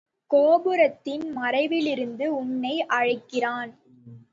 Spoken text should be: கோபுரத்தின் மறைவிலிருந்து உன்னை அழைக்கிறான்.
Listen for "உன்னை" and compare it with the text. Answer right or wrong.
right